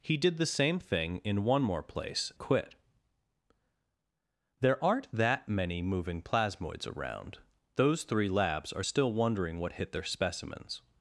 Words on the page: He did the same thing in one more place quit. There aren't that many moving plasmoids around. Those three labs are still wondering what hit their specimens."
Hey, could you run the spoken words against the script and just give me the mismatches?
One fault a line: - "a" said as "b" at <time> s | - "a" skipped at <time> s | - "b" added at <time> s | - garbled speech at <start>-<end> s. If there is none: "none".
none